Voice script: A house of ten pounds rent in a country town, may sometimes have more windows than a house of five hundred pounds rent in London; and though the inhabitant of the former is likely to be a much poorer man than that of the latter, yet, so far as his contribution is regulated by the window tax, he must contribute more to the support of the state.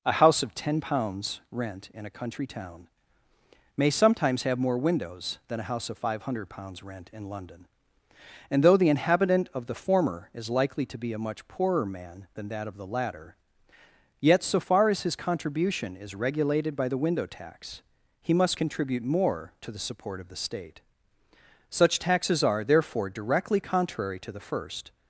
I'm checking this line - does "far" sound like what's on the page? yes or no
yes